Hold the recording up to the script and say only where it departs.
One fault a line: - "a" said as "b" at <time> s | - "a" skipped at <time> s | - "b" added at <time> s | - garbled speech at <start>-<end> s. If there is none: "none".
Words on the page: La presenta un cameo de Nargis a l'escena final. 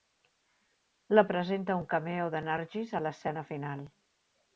none